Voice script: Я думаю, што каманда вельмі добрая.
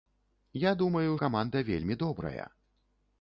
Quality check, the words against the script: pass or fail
fail